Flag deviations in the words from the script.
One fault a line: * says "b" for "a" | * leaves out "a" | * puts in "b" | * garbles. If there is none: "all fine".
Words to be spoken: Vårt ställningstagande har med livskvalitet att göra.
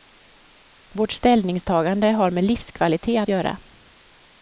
all fine